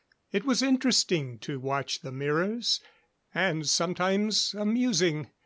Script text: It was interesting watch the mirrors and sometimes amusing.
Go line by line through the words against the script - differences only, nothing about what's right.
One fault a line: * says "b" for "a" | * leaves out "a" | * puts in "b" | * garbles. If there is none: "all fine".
* puts in "to"